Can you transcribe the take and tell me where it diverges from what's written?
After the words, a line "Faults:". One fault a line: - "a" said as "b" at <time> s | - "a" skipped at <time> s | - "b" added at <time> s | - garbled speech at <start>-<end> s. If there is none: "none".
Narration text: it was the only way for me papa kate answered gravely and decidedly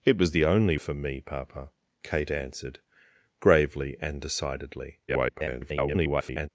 it was the only for me papa kate answered gravely and decidedly [garbled]
Faults:
- "way" skipped at 0.8 s
- garbled speech at 5.1-6.5 s